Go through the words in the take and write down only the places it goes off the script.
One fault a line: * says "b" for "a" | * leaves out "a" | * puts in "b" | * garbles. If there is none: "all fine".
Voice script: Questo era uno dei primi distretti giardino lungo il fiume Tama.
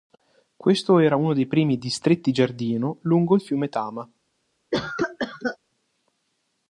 all fine